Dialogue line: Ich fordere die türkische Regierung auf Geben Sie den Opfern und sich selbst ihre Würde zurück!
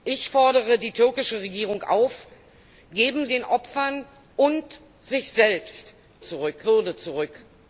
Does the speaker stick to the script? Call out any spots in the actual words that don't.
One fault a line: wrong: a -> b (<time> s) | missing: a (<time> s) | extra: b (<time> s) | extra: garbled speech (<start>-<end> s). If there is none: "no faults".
missing: Sie (3.3 s)
wrong: ihre -> zurück (6.2 s)